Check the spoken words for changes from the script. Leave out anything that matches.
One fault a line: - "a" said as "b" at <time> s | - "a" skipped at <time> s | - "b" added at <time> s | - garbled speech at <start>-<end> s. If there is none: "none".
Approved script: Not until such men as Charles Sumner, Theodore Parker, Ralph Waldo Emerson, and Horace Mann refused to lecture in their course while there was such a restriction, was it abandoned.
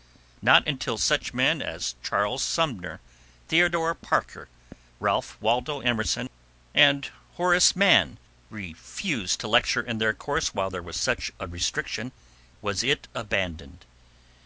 none